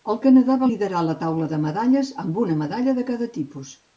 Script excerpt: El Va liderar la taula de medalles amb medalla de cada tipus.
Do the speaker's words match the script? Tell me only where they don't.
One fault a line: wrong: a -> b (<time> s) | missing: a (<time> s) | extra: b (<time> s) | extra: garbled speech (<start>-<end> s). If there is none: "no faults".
extra: Canadà (0.2 s)
extra: una (2.4 s)